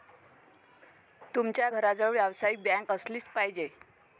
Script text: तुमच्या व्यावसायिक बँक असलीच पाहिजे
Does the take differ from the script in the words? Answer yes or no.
yes